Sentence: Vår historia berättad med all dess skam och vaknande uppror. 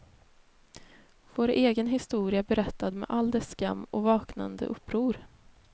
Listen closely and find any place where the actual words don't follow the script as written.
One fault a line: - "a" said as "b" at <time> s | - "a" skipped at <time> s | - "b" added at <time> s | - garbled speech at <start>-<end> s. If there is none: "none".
- "egen" added at 1.5 s